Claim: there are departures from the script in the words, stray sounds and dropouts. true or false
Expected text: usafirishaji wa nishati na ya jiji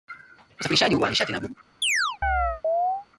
true